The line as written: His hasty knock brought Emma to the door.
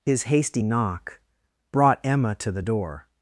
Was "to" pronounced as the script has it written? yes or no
yes